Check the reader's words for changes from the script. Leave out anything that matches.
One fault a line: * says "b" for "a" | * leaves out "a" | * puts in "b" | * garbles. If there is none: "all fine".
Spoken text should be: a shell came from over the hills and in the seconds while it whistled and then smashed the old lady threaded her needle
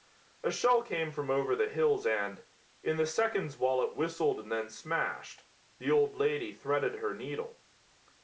all fine